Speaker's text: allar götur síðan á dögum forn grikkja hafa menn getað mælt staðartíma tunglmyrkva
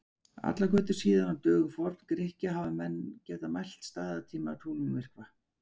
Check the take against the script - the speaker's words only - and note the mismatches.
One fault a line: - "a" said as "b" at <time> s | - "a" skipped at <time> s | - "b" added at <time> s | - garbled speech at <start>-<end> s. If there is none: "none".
none